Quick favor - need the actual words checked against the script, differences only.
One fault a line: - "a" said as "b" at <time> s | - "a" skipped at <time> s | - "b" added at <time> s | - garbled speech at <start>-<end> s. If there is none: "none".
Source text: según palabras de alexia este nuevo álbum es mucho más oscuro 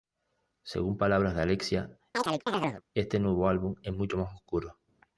none